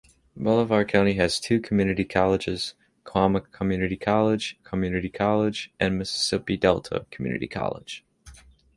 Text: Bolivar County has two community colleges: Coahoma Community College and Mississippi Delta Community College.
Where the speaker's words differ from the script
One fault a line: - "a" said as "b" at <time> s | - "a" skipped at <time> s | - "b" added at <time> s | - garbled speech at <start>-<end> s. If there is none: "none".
- "Community College" added at 4.6 s